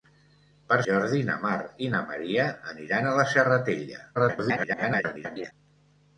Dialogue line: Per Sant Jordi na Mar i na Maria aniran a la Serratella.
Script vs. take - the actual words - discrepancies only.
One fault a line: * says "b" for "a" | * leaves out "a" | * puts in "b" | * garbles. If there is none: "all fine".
* leaves out "Sant"
* garbles